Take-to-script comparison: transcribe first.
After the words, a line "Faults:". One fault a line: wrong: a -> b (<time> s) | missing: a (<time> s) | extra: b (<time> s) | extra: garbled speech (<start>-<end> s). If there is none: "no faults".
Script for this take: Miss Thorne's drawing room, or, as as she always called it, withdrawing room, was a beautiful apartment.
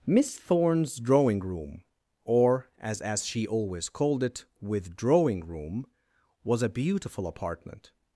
Miss Thorne's drawing room, or, as as she always called it, withdrawing room, was a beautiful apartment.
Faults:
no faults